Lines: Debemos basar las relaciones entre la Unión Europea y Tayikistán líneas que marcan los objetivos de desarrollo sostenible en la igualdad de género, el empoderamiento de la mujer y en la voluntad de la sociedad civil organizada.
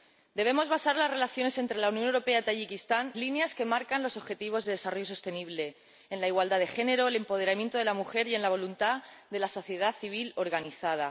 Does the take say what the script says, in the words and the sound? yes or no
yes